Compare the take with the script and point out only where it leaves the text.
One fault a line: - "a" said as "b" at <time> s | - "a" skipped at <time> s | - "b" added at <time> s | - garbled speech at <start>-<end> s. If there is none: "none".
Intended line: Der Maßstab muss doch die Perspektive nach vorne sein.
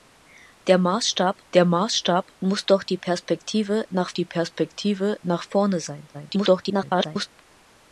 - "der Maßstab" added at 1.5 s
- "die Perspektive nach" added at 4.1 s
- garbled speech at 6.1-7.3 s